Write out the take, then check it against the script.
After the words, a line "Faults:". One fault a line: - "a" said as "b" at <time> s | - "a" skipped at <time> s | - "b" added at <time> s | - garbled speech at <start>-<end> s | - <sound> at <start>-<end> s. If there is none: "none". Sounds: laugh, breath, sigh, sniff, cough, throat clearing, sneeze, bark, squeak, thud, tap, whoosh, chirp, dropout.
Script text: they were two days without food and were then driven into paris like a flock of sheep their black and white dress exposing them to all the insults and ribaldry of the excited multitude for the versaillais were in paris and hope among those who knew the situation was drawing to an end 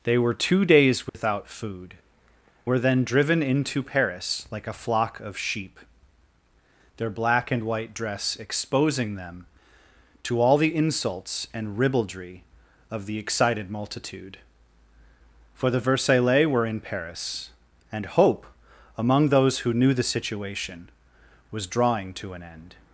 they were two days without food were then driven into paris like a flock of sheep their black and white dress exposing them to all the insults and ribaldry of the excited multitude for the versaillais were in paris and hope among those who knew the situation was drawing to an end
Faults:
- dropout at 1.1-1.1 s
- "and" skipped at 1.9 s